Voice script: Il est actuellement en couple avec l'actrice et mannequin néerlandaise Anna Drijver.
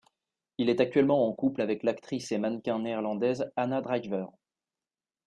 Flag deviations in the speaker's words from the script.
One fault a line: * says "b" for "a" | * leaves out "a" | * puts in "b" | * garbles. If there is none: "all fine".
all fine